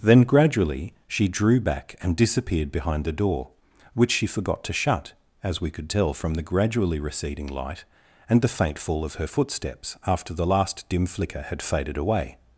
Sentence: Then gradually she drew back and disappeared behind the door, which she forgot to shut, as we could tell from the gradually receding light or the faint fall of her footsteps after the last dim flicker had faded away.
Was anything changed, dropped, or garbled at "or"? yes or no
yes